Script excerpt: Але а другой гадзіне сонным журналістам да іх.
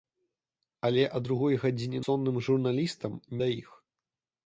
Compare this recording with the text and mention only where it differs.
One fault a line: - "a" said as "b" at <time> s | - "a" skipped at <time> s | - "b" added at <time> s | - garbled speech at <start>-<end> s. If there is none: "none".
none